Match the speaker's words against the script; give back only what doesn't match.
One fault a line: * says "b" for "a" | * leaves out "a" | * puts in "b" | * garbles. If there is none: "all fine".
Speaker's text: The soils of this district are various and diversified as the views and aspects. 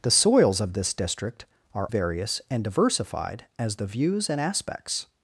all fine